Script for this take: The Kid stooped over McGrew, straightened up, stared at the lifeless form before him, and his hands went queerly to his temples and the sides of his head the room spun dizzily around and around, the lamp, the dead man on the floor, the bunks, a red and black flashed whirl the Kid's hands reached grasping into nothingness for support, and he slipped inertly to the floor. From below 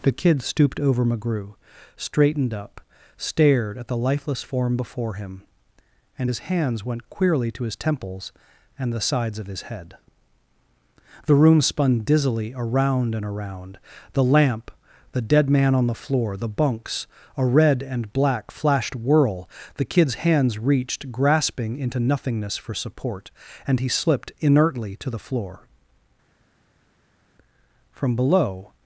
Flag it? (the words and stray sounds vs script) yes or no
no